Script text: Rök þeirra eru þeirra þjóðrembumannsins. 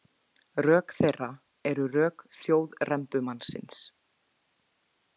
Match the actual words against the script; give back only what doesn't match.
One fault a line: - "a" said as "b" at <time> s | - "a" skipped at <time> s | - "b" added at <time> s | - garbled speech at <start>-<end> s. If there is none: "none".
- "þeirra" said as "rök" at 2.0 s